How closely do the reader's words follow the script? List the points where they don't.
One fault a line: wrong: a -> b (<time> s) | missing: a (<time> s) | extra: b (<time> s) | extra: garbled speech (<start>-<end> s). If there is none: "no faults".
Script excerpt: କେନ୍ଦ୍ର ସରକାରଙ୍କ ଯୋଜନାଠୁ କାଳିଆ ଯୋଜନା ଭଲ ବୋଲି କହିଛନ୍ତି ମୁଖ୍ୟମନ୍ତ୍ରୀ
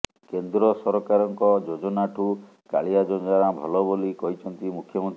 no faults